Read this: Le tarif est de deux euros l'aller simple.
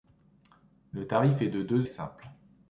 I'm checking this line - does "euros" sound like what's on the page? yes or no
no